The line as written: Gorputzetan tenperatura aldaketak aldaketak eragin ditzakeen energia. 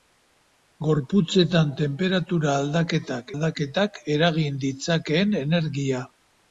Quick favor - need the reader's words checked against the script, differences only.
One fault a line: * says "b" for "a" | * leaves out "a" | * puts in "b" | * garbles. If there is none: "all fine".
all fine